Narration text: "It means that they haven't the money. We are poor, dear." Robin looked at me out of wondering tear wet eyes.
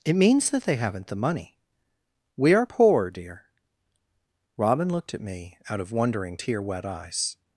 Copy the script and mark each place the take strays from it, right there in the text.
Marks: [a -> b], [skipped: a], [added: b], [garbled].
"It means that they haven't the money. We are poor, dear." Robin looked at me out of wondering tear wet eyes.